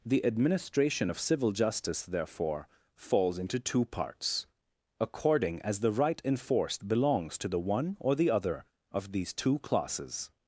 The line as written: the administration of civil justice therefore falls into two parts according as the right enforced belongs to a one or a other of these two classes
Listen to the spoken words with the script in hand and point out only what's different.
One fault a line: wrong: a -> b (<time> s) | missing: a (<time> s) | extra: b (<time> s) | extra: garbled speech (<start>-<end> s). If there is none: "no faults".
wrong: a -> the (7.5 s)
wrong: a -> the (8.1 s)